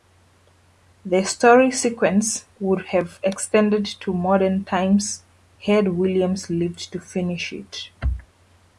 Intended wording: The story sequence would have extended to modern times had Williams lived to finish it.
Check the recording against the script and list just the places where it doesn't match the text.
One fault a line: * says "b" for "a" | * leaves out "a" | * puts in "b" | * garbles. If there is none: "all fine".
all fine